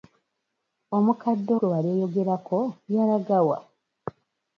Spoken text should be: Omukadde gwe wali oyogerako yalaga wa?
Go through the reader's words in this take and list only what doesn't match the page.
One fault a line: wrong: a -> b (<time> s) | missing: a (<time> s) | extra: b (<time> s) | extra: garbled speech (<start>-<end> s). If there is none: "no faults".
no faults